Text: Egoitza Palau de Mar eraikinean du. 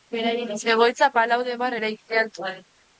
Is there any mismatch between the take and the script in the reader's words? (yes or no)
no